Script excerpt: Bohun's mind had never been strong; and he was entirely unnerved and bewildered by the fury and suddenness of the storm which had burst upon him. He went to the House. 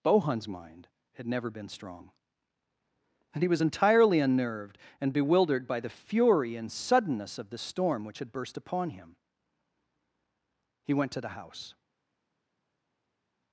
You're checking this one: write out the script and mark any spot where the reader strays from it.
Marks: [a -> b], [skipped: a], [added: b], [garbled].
Bohun's mind had never been strong; and he was entirely unnerved and bewildered by the fury and suddenness of the storm which had burst upon him. He went to the House.